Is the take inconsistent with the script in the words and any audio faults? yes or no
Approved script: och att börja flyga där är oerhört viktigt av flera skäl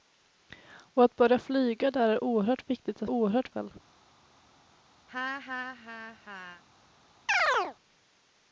yes